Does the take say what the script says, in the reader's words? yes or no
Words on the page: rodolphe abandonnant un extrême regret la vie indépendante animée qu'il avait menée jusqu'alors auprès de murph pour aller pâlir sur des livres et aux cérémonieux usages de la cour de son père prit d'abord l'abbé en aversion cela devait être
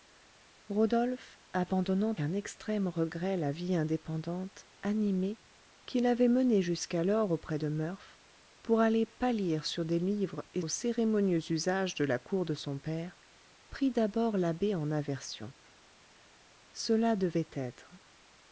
yes